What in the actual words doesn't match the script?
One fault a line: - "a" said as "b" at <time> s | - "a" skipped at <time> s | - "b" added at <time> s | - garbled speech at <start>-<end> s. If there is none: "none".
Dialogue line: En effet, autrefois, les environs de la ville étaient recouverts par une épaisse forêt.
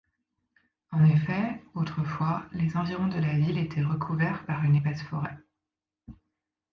none